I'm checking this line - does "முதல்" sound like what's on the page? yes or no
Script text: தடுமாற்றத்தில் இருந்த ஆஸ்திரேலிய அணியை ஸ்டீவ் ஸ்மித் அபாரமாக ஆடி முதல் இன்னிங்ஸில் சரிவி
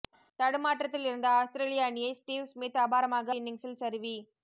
no